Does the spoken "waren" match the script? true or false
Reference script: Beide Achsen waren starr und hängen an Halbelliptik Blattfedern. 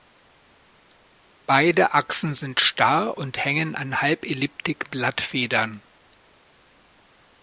false